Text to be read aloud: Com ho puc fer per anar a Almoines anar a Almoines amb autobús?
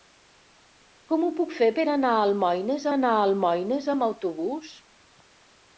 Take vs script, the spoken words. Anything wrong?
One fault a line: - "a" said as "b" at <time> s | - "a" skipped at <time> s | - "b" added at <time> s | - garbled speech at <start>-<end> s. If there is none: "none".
none